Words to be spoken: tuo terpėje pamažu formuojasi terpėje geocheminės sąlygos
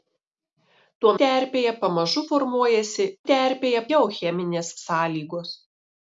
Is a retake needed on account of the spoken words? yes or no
no